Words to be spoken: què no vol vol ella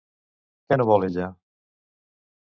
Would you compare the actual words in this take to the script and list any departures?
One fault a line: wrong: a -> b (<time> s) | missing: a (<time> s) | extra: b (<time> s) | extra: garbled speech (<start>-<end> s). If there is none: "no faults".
missing: vol (1.0 s)